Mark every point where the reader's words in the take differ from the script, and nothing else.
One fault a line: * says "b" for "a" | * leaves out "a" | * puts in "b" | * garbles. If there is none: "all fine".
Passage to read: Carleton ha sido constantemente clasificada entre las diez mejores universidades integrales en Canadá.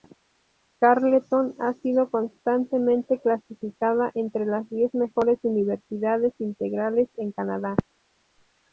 all fine